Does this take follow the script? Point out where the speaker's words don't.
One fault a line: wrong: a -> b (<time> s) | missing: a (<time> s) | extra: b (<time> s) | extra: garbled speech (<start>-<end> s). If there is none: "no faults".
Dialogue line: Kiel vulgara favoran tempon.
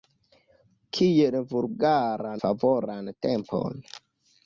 no faults